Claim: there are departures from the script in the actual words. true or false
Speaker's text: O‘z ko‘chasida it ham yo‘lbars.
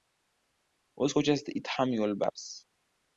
false